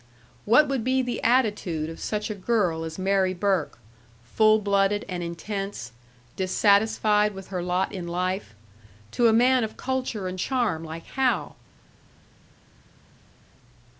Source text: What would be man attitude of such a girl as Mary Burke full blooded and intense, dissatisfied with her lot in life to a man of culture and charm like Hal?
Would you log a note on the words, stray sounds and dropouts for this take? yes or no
yes